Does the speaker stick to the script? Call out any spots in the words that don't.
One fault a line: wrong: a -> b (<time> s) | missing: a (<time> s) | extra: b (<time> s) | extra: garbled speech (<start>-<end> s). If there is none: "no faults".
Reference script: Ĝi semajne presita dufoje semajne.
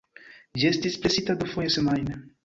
wrong: semajne -> estis (0.7 s)